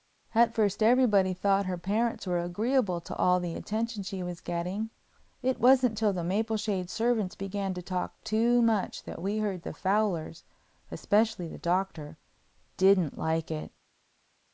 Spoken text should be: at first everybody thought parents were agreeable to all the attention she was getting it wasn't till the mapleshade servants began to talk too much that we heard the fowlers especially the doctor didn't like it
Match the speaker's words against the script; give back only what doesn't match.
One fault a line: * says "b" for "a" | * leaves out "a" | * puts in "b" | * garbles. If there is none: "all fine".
* puts in "her"